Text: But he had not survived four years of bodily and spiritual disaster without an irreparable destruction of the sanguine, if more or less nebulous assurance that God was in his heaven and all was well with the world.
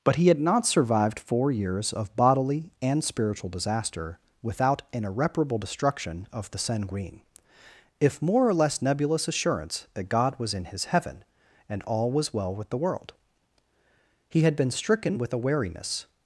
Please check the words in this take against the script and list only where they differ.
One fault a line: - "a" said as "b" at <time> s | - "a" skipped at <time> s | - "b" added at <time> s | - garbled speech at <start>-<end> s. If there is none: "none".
- "He had been stricken with a wariness" added at 14.3 s